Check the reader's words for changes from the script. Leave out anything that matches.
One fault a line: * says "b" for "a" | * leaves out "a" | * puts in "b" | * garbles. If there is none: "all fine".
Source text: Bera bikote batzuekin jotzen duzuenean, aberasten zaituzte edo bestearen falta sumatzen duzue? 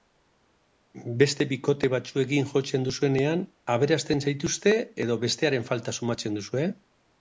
* says "Beste" for "Bera"